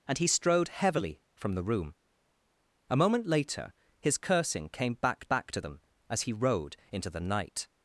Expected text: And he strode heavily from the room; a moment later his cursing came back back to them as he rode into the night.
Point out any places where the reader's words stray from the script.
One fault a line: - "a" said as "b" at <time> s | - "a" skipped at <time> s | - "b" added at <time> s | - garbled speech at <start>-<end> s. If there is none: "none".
none